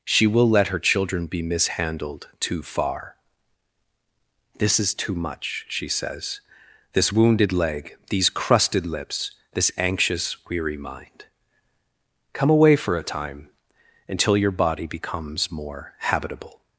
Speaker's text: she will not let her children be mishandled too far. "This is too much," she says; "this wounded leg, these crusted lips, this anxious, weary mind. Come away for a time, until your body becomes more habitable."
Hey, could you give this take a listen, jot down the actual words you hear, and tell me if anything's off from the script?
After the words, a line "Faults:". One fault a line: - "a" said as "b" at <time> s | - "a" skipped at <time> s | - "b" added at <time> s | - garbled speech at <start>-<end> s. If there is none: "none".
she will let her children be mishandled too far. "This is too much," she says; "this wounded leg, these crusted lips, this anxious, weary mind. Come away for a time, until your body becomes more habitable."
Faults:
- "not" skipped at 0.5 s